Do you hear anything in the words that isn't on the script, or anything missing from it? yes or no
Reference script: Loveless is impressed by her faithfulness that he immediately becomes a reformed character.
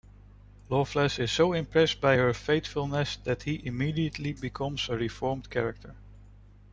yes